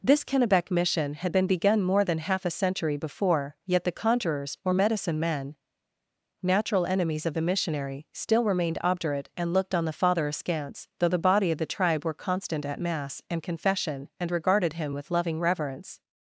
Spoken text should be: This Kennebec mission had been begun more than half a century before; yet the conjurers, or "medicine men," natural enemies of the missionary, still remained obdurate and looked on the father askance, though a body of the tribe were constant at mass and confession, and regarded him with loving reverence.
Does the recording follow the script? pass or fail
fail